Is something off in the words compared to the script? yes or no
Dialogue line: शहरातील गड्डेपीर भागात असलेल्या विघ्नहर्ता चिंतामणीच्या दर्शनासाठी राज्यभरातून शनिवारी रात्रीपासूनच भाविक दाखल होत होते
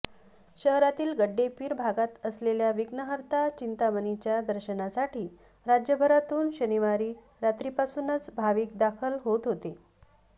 no